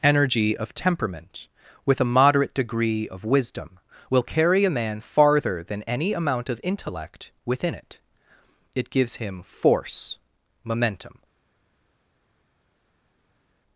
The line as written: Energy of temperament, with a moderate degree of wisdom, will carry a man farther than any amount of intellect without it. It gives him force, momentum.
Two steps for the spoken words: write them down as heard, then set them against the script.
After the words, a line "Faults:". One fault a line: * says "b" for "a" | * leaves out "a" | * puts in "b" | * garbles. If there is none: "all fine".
Energy of temperament, with a moderate degree of wisdom, will carry a man farther than any amount of intellect within it. It gives him force, momentum.
Faults:
* says "within" for "without"